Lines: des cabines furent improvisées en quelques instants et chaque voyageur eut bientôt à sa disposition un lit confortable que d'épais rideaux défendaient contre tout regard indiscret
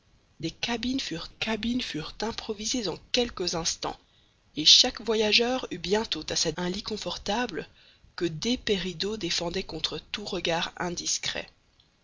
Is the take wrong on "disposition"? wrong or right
wrong